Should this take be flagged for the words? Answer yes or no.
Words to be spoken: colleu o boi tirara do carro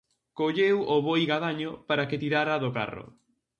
yes